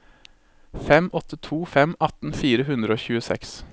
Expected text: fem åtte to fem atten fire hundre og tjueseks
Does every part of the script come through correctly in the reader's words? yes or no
yes